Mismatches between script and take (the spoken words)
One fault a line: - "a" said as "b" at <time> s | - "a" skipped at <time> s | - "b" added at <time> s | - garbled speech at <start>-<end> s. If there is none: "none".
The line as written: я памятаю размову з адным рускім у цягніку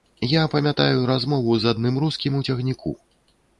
none